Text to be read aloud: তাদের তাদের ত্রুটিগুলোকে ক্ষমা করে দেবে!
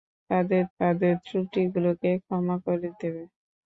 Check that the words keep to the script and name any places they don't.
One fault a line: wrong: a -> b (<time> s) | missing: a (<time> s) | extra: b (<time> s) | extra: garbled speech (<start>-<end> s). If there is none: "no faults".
no faults